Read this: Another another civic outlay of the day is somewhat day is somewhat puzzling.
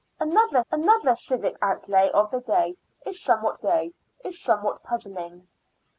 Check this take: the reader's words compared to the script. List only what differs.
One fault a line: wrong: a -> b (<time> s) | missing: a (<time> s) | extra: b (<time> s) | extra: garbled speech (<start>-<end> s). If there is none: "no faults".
no faults